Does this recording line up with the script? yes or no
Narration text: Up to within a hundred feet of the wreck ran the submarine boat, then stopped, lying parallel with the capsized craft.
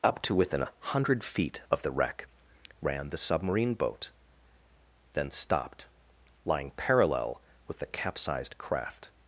yes